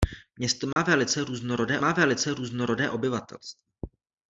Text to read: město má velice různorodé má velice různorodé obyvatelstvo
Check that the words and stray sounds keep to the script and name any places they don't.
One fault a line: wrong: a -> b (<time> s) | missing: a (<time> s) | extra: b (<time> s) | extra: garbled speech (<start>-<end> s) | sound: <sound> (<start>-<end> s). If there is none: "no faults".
sound: dropout (0.7-0.8 s)